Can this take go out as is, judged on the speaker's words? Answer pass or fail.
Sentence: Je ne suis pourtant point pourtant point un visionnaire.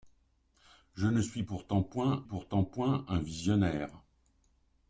pass